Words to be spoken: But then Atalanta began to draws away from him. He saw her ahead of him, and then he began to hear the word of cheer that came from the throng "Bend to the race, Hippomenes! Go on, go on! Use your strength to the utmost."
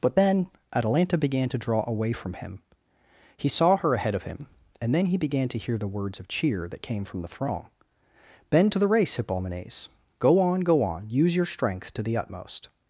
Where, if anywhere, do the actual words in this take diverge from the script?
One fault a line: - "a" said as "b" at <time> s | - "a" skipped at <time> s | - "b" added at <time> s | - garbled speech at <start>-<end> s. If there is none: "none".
- "draws" said as "draw" at 1.6 s
- "word" said as "words" at 5.9 s